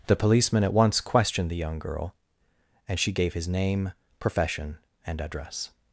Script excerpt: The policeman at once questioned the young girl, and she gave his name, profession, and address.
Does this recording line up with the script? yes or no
yes